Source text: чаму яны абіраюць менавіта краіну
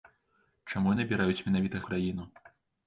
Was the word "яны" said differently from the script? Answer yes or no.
no